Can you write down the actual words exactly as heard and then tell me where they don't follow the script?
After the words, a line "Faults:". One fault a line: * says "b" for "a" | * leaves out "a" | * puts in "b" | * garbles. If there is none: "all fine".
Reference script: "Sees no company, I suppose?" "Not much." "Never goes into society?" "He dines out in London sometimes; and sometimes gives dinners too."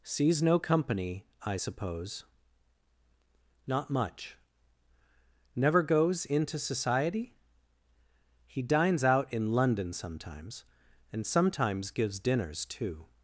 "Sees no company, I suppose?" "Not much." "Never goes into society?" "He dines out in London sometimes; and sometimes gives dinners too."
Faults:
all fine